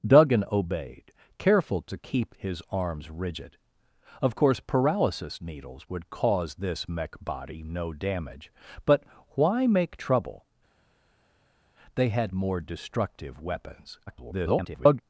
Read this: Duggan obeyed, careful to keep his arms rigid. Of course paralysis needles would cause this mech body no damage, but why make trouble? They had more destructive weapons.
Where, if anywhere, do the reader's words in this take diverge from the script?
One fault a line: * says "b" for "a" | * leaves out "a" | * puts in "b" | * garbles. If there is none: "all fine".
* garbles